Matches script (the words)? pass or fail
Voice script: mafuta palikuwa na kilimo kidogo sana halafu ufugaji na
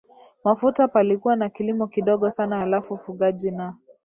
pass